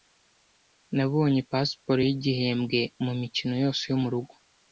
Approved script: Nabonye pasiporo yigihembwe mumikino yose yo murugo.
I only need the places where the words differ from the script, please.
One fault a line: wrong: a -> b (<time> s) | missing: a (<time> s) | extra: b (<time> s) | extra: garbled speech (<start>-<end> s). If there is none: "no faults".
no faults